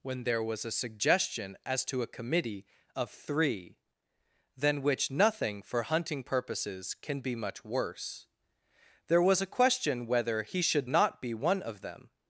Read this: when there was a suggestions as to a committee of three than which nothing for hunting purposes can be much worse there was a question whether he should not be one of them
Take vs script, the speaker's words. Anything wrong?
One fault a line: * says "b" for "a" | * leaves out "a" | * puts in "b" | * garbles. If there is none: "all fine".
* says "suggestion" for "suggestions"